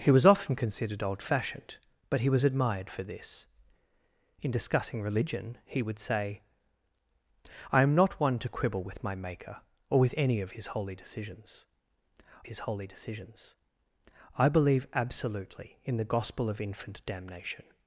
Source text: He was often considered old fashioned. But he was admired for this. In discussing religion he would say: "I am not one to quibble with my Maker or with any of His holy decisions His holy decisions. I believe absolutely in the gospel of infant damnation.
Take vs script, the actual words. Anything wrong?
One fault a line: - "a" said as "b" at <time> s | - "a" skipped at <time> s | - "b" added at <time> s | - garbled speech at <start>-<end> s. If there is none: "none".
none